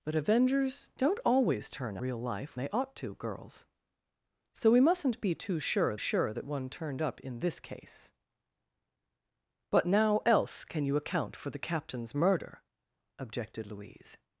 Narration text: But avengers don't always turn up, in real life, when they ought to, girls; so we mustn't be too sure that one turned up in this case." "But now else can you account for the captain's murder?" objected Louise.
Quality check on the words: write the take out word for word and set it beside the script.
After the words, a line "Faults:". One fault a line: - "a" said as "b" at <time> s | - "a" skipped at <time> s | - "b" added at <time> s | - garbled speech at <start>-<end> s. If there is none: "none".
But avengers don't always turn real life, they ought to, girls; so we mustn't be too sure sure that one turned up in this case." "But now else can you account for the captain's murder?" objected Louise.
Faults:
- "up in" skipped at 2.0 s
- "when" skipped at 2.6 s
- "sure" added at 5.9 s